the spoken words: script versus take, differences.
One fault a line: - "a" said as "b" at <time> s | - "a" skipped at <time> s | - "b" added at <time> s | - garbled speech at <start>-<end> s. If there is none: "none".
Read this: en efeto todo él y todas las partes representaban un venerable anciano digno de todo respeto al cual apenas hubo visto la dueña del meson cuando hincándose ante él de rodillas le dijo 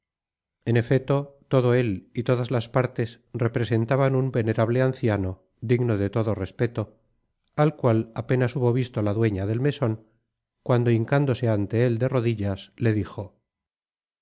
none